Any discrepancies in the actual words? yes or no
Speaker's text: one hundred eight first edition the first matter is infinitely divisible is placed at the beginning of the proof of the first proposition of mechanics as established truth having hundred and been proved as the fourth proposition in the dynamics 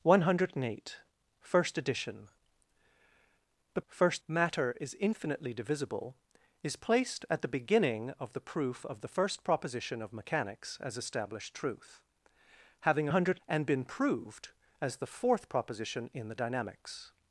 no